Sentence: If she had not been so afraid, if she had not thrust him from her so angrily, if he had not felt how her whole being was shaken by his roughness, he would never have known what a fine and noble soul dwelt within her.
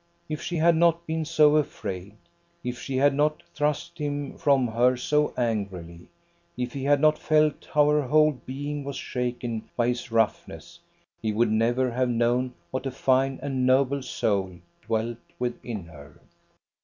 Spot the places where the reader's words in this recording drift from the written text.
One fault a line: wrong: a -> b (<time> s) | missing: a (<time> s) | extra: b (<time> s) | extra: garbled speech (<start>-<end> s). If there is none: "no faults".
no faults